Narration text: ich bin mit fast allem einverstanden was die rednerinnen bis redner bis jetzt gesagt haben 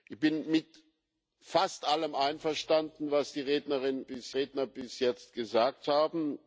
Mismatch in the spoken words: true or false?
false